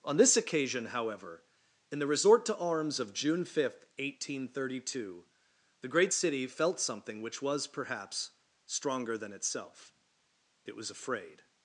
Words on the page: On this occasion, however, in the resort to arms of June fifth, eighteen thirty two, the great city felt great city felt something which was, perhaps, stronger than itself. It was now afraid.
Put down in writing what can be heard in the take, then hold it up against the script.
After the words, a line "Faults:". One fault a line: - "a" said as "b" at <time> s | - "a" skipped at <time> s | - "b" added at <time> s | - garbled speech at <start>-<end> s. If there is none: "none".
On this occasion, however, in the resort to arms of June fifth, eighteen thirty two, the great city felt something which was, perhaps, stronger than itself. It was afraid.
Faults:
- "great city felt" skipped at 6.8 s
- "now" skipped at 10.9 s